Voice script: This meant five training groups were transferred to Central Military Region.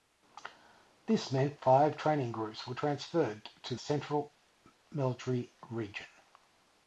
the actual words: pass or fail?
pass